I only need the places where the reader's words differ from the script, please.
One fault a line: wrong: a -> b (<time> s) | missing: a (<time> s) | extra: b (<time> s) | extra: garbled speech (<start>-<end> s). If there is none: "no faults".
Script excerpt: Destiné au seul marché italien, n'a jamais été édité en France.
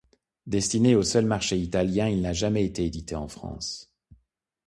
extra: il (2.1 s)